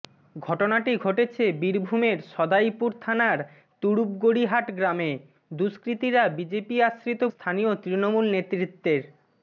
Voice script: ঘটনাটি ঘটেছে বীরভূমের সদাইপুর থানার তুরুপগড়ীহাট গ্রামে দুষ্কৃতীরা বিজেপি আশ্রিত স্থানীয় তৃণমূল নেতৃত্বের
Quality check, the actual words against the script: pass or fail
pass